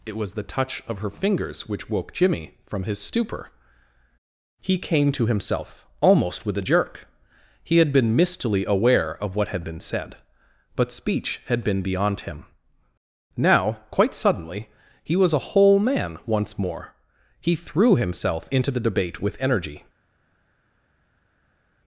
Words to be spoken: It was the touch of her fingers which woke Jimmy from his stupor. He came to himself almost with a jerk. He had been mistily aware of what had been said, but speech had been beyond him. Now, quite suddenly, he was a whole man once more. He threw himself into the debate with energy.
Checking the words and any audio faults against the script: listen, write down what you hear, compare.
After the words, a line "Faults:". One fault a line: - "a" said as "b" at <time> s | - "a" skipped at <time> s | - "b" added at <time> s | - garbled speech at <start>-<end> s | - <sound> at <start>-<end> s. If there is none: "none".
It was the touch of her fingers which woke Jimmy from his stupor. He came to himself almost with a jerk. He had been mistily aware of what had been said, but speech had been beyond him. Now, quite suddenly, he was a whole man once more. He threw himself into the debate with energy.
Faults:
none